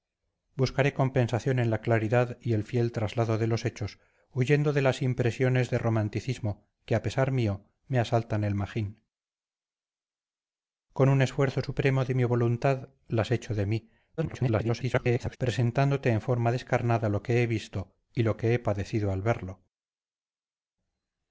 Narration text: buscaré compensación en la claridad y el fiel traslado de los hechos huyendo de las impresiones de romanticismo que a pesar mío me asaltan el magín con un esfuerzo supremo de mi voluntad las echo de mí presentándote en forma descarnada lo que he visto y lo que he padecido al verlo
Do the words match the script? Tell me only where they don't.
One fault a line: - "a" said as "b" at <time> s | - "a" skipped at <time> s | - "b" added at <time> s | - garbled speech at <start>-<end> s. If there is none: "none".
- garbled speech at 14.2-15.4 s